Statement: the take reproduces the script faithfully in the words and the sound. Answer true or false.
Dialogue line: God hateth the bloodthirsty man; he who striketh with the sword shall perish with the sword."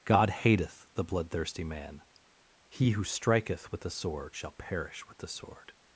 true